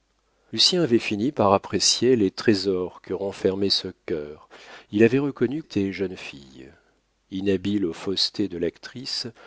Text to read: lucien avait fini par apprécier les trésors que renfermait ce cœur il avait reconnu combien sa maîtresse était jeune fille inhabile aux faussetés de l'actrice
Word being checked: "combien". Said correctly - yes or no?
no